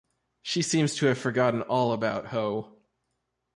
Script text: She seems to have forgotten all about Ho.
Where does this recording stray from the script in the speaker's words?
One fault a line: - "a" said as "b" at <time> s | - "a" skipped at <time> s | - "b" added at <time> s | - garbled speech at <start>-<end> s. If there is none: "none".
none